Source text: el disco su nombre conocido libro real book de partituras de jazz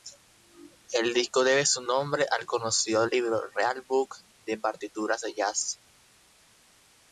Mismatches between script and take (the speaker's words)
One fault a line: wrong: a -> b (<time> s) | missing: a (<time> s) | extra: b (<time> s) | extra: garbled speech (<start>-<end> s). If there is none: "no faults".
extra: debe (1.4 s)
extra: al (2.3 s)